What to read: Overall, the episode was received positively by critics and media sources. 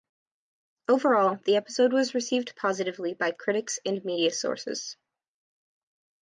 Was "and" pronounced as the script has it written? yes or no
yes